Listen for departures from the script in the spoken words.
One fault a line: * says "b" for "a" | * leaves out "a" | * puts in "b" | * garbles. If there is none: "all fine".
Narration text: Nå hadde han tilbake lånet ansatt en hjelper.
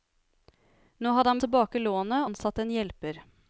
all fine